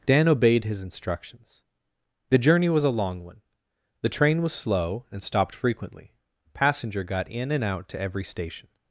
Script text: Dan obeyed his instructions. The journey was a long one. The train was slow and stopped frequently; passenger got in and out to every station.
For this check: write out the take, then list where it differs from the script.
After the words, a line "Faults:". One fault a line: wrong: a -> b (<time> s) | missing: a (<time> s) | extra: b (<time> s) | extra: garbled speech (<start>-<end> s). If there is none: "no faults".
Dan obeyed his instructions. The journey was a long one. The train was slow and stopped frequently; passenger got in and out to every station.
Faults:
no faults